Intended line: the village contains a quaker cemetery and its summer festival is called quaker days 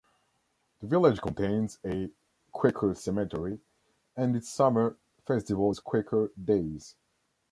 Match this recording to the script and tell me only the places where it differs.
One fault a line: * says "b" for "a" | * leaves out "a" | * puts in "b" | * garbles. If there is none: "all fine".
* leaves out "called"